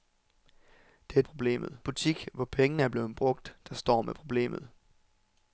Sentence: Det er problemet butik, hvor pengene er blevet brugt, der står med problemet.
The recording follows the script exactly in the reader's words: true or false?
true